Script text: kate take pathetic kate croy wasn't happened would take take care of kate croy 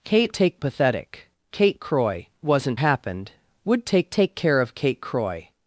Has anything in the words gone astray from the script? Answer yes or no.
no